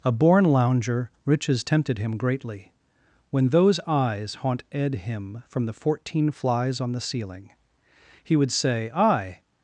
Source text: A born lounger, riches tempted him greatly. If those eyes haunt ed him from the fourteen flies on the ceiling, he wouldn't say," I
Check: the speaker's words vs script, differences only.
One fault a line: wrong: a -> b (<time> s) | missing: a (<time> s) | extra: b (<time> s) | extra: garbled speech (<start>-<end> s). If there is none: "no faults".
wrong: If -> When (3.3 s)
wrong: wouldn't -> would (8.4 s)